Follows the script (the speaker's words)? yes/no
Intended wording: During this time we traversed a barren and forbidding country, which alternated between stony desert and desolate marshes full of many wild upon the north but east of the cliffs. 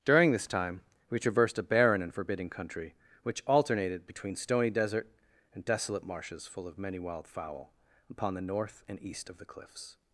no